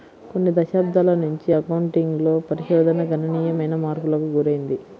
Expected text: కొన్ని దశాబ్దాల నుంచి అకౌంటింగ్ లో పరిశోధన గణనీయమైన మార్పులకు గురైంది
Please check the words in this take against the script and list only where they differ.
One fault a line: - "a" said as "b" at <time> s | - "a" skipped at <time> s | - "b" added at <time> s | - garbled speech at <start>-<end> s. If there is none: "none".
none